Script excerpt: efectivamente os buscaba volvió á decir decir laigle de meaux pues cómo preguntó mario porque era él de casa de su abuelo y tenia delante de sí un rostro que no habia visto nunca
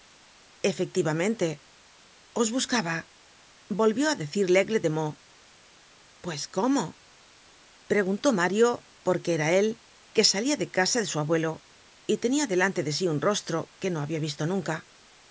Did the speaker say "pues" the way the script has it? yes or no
yes